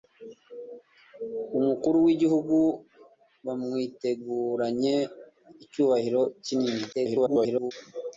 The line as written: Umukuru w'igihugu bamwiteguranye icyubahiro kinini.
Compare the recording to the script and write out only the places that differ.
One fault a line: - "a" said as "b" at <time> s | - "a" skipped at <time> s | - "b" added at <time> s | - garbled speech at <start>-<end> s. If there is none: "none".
- garbled speech at 6.9-7.7 s